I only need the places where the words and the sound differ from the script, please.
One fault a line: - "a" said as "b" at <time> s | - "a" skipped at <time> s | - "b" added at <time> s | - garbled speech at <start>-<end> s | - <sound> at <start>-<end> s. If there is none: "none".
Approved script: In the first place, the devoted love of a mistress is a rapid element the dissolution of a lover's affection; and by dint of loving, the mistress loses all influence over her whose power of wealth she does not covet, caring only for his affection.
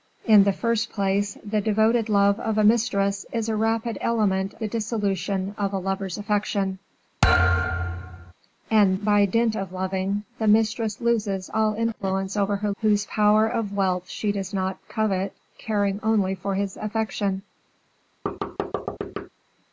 - thud at 7.2-8.3 s
- thud at 18.3-19.3 s